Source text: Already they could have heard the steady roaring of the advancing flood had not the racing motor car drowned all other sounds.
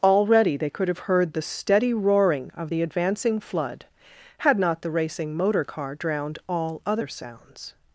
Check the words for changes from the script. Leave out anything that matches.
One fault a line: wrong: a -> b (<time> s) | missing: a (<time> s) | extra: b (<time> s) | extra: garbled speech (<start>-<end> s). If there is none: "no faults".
no faults